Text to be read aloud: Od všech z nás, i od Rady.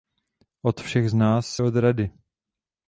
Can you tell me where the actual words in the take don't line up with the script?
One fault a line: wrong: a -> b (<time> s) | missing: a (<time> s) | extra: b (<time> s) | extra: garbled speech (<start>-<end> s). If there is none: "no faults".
missing: i (1.6 s)